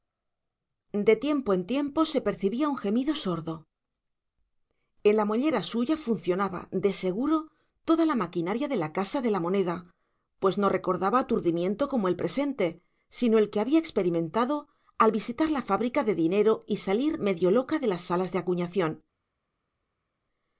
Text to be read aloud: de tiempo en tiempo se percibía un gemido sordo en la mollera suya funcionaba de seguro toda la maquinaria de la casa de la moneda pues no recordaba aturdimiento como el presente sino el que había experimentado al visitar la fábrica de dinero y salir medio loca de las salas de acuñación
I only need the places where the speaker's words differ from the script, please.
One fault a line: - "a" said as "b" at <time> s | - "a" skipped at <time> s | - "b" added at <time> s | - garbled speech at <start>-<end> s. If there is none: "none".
none